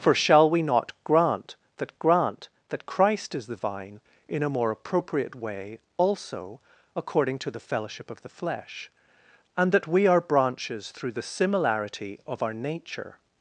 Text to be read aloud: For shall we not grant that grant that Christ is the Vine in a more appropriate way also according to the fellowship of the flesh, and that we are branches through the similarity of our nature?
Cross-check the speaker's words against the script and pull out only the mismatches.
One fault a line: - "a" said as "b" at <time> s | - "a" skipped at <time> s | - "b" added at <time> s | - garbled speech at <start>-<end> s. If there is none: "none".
none